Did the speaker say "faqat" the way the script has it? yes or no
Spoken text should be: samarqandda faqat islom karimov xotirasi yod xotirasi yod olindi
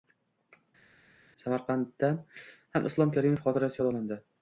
no